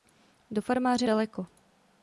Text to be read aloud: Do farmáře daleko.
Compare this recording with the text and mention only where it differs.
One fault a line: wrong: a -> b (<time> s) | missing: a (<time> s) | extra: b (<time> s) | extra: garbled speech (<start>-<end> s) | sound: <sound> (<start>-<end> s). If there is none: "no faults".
no faults